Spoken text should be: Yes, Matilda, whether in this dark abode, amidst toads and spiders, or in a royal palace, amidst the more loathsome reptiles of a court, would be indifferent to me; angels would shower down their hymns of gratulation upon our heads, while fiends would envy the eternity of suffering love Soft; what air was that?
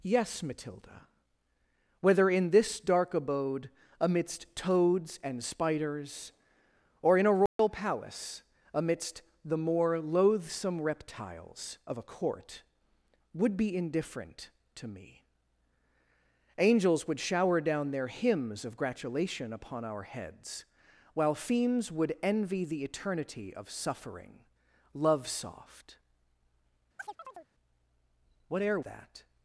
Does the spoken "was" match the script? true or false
false